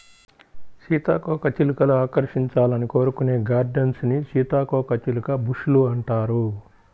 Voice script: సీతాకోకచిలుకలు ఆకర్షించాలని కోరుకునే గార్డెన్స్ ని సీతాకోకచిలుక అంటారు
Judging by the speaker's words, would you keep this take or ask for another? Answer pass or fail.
fail